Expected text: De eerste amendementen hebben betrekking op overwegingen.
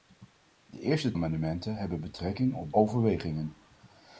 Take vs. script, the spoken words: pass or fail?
pass